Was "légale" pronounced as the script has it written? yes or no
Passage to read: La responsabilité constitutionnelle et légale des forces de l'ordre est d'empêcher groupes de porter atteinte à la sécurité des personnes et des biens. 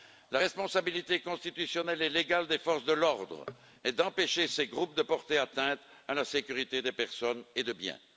yes